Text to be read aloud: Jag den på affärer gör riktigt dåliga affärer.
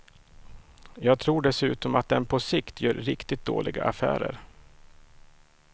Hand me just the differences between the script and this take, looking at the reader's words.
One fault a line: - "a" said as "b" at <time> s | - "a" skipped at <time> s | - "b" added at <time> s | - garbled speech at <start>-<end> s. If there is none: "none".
- "tror dessutom att" added at 1.2 s
- "affärer" said as "sikt" at 2.4 s